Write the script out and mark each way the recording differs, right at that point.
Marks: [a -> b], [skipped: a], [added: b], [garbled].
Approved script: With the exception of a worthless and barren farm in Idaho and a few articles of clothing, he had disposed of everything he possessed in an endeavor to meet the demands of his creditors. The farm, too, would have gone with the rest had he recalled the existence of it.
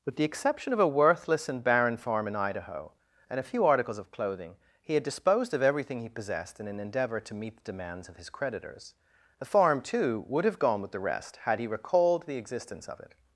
With the exception of a worthless and barren farm in Idaho and a few articles of clothing, he had disposed of everything he possessed in an endeavor to meet the demands of his creditors. The farm, too, would have gone with the rest had he recalled the existence of it.